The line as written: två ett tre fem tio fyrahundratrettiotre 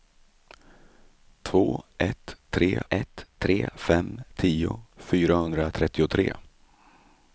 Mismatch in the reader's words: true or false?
true